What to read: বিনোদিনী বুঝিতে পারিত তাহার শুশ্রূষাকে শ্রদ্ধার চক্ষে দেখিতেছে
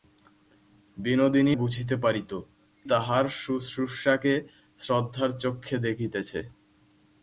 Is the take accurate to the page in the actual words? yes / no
yes